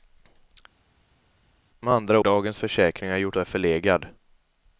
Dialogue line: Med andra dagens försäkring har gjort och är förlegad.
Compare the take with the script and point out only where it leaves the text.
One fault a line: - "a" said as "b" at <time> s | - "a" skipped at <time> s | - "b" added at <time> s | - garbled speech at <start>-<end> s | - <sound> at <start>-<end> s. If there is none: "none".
none